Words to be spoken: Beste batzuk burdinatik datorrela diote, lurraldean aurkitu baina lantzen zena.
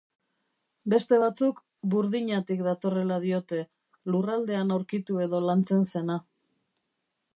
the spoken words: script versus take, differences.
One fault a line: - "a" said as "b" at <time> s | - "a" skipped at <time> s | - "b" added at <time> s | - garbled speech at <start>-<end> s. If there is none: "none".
- "baina" said as "edo" at 5.3 s